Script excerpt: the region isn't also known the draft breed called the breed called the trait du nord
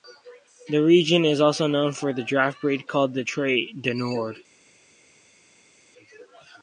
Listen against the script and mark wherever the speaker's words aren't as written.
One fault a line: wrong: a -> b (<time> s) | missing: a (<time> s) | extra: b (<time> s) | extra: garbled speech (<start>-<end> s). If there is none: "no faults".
wrong: isn't -> is (1.2 s)
extra: for (1.9 s)
missing: breed called the (3.2 s)